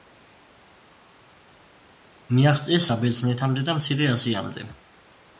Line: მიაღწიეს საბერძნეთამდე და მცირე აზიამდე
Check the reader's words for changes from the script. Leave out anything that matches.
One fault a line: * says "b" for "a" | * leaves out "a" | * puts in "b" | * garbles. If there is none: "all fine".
all fine